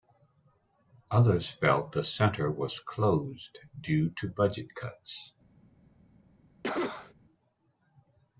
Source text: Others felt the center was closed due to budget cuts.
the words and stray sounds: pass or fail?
fail